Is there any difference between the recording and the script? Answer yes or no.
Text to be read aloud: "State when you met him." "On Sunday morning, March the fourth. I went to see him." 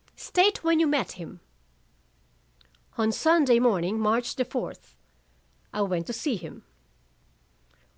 no